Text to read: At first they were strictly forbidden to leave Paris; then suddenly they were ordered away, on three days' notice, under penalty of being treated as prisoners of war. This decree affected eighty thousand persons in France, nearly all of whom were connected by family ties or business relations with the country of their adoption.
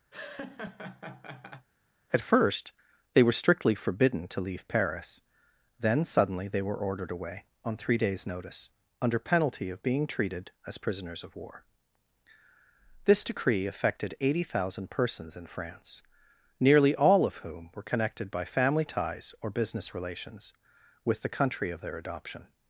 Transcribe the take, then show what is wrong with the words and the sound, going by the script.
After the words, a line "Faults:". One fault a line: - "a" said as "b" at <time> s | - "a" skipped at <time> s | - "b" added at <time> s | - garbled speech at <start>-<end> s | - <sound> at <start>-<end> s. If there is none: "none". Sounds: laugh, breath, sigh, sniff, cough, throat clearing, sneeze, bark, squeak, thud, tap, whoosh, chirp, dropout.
At first they were strictly forbidden to leave Paris; then suddenly they were ordered away, on three days' notice, under penalty of being treated as prisoners of war. This decree affected eighty thousand persons in France, nearly all of whom were connected by family ties or business relations with the country of their adoption.
Faults:
- laugh at 0.1-1.7 s